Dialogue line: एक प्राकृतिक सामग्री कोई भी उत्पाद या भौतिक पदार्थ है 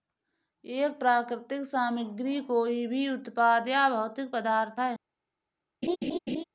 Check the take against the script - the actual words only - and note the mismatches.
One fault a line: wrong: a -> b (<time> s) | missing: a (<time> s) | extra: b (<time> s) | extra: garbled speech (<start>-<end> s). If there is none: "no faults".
no faults